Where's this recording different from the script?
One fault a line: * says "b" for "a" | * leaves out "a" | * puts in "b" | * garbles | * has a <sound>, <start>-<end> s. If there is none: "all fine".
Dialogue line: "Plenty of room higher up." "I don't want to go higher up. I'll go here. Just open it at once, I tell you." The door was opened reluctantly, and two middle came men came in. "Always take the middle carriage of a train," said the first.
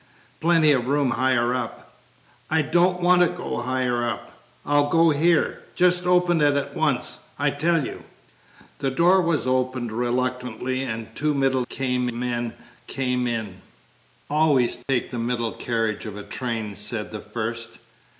* has a dropout, 14.8-14.9 s